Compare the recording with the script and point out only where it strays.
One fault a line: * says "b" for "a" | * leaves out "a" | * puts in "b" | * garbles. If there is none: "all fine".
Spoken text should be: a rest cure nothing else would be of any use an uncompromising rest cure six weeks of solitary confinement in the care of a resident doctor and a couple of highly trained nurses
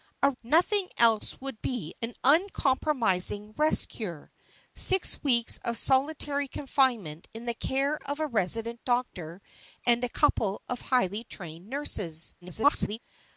* leaves out "rest cure"
* leaves out "of any use"
* garbles